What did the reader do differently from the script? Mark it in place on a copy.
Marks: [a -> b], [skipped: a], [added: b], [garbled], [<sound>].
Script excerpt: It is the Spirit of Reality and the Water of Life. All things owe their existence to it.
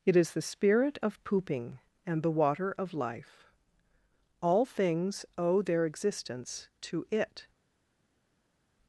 It is the Spirit of [Reality -> Pooping] and the Water of Life. All things owe their existence to it.